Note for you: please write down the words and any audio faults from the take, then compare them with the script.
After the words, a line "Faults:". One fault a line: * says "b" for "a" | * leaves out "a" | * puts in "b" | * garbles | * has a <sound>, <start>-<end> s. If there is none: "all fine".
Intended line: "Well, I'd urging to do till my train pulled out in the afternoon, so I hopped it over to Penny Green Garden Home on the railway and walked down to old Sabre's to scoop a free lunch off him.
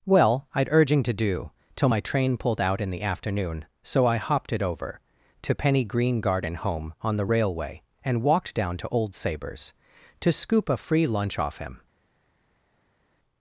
"Well, I'd urging to do till my train pulled out in the afternoon, so I hopped it over to Penny Green Garden Home on the railway and walked down to old Sabre's to scoop a free lunch off him.
Faults:
all fine